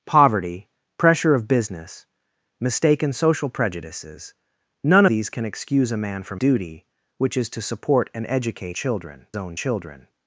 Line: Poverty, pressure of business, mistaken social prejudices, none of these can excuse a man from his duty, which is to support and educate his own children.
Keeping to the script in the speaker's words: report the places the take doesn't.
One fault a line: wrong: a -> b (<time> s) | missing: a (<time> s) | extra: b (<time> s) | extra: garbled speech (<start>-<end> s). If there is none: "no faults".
missing: of (5.0 s)
missing: his (6.4 s)
wrong: his -> children (8.7 s)